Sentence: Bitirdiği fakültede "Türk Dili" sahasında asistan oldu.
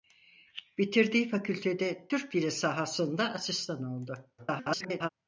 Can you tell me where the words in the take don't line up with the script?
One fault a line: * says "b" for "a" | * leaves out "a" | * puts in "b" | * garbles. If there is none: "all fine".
* garbles